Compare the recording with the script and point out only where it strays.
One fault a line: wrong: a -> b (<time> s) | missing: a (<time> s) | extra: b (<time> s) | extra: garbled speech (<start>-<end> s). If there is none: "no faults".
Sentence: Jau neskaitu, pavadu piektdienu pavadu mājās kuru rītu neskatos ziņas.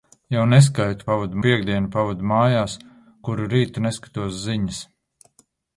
no faults